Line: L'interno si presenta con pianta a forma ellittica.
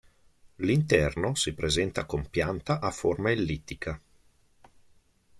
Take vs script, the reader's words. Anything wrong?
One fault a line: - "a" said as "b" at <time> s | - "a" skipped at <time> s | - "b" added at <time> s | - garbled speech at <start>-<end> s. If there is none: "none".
none